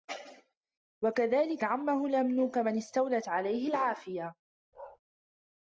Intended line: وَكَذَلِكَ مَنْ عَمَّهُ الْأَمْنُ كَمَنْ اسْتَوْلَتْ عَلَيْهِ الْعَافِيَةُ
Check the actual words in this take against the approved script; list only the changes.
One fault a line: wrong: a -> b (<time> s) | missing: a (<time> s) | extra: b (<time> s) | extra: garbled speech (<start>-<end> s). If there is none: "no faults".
missing: مَنْ (1.6 s)